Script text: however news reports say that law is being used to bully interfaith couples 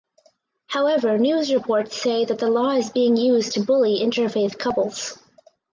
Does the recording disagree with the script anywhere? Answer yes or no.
yes